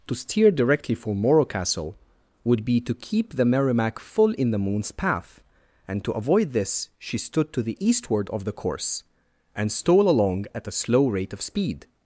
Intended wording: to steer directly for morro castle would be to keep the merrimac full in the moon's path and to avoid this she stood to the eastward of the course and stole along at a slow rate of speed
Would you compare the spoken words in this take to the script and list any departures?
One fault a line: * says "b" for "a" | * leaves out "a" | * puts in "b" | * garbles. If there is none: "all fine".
all fine